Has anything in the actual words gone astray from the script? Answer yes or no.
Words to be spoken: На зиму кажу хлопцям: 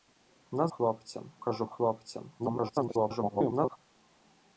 yes